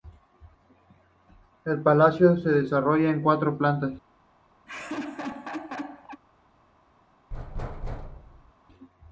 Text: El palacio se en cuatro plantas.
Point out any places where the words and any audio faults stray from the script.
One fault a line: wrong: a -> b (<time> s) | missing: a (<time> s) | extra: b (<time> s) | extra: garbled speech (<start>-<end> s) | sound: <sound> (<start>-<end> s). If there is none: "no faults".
extra: desarrolla (2.5 s)
sound: laugh (4.7-6.2 s)
sound: thud (7.3-8.5 s)